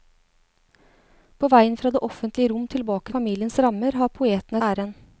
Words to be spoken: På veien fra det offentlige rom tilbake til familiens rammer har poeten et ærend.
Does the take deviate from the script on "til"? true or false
true